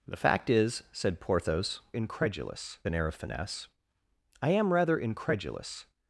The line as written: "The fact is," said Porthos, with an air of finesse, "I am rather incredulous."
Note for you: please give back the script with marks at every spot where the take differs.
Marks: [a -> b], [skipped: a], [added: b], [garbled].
"The fact is," said Porthos, [with -> incredulous] an air of finesse, "I am rather incredulous."